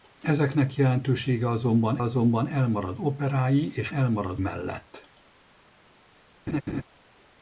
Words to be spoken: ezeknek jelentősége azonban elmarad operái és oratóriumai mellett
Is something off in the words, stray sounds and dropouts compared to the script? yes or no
yes